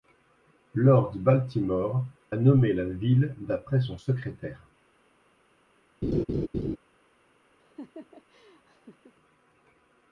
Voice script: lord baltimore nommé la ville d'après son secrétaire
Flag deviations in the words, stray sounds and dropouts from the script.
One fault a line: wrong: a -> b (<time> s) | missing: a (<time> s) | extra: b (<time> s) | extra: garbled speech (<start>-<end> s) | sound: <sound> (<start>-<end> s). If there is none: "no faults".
sound: laugh (6.0-6.8 s)
sound: laugh (7.6-9.1 s)